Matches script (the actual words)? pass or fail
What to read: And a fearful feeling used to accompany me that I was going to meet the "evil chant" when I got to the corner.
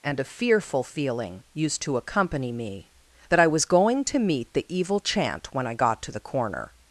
pass